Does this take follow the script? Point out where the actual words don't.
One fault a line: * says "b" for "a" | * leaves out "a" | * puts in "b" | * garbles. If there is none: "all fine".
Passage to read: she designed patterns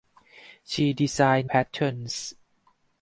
all fine